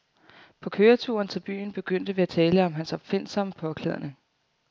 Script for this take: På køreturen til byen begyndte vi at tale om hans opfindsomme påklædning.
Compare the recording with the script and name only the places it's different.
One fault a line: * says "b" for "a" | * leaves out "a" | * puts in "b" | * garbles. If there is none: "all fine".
all fine